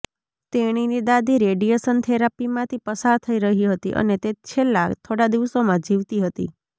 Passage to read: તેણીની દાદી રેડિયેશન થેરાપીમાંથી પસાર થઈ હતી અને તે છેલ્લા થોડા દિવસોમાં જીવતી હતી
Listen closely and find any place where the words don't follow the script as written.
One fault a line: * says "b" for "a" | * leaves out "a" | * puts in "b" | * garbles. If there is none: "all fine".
* puts in "રહી"